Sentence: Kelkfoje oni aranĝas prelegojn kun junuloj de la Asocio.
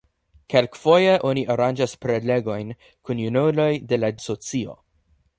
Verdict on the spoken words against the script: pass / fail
pass